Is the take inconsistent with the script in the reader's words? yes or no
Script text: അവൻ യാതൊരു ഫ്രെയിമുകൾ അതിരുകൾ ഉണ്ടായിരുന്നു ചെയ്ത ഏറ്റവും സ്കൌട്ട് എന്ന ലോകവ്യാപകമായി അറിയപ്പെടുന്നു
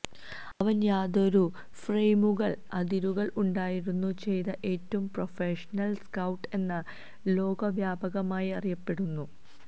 yes